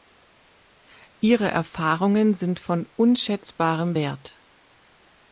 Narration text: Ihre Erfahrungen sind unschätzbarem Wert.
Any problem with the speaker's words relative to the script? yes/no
yes